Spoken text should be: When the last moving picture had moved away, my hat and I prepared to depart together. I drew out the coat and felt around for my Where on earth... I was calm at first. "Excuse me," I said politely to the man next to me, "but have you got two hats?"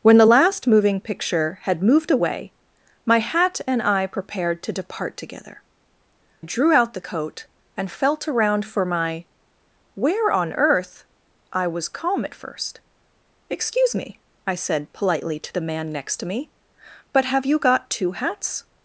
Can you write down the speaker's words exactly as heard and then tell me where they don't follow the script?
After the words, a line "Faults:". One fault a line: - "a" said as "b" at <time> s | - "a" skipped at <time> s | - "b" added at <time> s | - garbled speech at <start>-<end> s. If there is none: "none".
When the last moving picture had moved away, my hat and I prepared to depart together. drew out the coat and felt around for my Where on earth... I was calm at first. "Excuse me," I said politely to the man next to me, "but have you got two hats?"
Faults:
- "I" skipped at 5.6 s